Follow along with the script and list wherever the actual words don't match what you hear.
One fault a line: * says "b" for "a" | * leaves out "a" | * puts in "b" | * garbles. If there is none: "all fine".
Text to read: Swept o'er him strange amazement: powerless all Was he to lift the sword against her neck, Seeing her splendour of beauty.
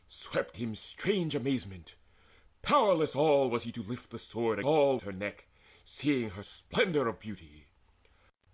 * leaves out "o'er"
* says "all" for "against"